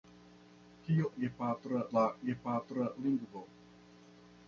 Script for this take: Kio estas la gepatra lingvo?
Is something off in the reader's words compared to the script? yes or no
yes